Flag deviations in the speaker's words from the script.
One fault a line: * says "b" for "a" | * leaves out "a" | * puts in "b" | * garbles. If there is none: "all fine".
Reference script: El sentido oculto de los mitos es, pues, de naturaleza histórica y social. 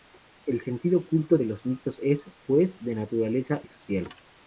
* leaves out "histórica"